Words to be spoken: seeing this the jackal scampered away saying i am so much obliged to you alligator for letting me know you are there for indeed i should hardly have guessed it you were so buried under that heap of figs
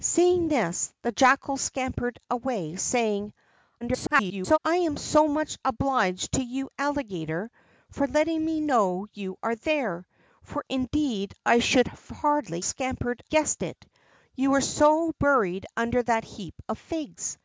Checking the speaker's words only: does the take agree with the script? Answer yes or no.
no